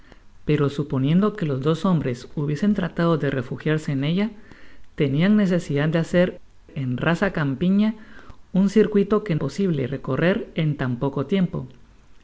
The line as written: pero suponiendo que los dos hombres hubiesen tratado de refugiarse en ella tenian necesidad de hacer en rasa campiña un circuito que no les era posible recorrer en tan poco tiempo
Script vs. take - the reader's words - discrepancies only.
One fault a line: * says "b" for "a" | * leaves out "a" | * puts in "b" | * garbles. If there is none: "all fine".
* leaves out "no les era"